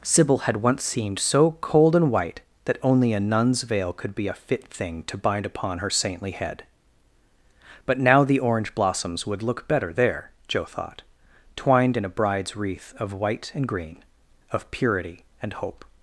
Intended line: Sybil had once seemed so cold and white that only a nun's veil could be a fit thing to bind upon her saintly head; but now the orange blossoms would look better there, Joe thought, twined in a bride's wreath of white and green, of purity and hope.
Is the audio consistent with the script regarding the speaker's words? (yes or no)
yes